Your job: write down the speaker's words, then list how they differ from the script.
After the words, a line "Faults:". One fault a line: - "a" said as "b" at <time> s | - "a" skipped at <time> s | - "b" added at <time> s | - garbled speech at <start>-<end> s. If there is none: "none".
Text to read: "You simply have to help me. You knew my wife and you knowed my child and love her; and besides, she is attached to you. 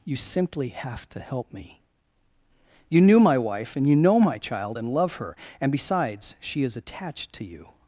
"You simply have to help me. You knew my wife and you know my child and love her; and besides, she is attached to you.
Faults:
- "knowed" said as "know" at 4.0 s